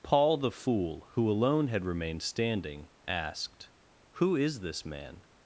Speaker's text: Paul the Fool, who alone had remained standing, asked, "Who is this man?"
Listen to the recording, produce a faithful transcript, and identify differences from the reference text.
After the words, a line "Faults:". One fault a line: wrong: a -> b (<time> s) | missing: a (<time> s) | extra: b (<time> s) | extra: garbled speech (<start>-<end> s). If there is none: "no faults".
Paul the Fool, who alone had remained standing, asked, "Who is this man?"
Faults:
no faults